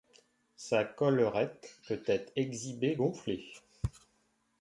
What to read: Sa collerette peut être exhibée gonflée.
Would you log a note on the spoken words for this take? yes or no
no